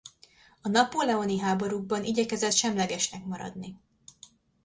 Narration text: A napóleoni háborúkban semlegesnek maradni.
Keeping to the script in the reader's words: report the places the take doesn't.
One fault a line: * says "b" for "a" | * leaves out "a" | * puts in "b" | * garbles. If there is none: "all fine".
* puts in "igyekezett"